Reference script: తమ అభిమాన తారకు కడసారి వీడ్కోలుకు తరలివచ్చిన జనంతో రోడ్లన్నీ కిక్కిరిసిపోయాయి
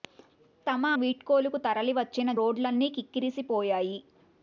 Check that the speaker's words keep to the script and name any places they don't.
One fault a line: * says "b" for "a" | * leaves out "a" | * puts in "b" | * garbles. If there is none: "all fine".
* leaves out "అభిమాన తారకు కడసారి"
* leaves out "జనంతో"